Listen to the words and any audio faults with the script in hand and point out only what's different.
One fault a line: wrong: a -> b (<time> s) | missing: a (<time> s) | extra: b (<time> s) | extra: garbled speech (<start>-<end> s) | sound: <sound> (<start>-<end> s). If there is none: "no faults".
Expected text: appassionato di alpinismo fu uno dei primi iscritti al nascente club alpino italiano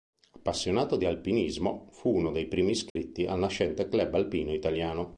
sound: dropout (2.9-3.0 s)